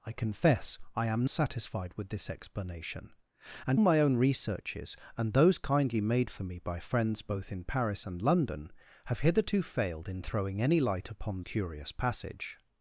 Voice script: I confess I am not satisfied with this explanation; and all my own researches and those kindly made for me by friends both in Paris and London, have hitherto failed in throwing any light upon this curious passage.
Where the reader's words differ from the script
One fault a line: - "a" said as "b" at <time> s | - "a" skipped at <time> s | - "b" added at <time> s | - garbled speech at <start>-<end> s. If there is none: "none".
- "not" skipped at 1.3 s
- "all" skipped at 3.8 s
- "this" skipped at 11.4 s